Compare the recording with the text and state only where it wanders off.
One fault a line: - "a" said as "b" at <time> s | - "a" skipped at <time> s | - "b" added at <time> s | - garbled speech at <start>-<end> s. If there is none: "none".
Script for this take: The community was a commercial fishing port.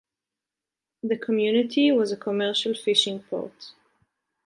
none